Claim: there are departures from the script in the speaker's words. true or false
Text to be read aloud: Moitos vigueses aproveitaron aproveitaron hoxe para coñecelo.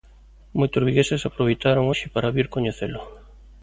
true